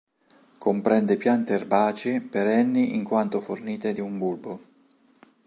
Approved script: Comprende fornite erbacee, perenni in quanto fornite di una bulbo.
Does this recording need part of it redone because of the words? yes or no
yes